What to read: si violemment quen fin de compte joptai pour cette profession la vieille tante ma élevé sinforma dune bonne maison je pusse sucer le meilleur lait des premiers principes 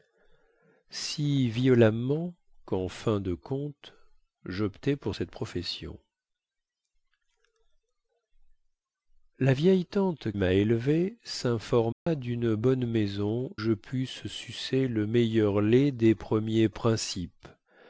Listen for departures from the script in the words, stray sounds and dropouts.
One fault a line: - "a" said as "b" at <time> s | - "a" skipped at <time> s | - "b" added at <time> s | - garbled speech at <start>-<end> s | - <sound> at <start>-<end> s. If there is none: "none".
- dropout at 11.9-12.1 s